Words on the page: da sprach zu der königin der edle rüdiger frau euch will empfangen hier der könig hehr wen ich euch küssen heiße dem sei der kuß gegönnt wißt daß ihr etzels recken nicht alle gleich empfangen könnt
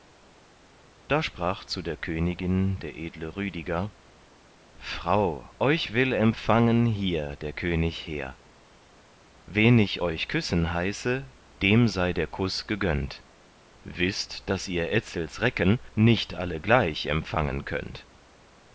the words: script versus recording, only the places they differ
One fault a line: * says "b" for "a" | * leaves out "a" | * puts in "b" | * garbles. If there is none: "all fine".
all fine